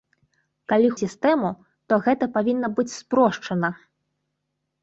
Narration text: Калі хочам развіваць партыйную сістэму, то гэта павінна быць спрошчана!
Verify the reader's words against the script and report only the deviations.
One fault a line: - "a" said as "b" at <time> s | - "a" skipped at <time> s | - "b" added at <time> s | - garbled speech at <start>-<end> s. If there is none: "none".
- "хочам развіваць партыйную" skipped at 0.9 s